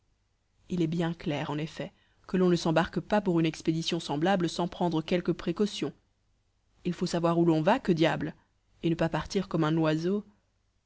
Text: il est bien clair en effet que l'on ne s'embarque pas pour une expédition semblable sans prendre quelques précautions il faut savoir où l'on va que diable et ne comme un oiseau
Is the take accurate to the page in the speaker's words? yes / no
no